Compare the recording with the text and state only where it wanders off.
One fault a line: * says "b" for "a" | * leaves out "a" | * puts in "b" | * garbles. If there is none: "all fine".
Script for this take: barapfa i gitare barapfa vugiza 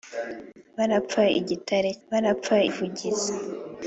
all fine